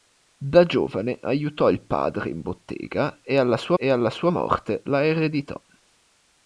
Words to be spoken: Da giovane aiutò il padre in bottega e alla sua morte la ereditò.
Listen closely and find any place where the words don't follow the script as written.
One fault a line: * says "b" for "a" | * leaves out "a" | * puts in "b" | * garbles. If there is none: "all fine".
* puts in "e alla sua"